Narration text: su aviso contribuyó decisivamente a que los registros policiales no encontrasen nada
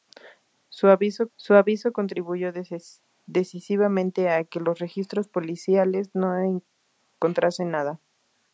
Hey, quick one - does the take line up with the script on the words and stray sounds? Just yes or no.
no